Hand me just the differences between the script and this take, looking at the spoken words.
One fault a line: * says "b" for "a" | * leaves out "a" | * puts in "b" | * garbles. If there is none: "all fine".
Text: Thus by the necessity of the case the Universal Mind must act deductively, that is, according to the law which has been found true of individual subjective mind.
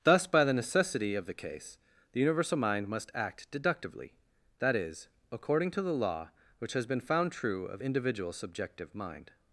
all fine